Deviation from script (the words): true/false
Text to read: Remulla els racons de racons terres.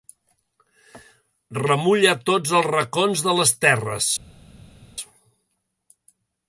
true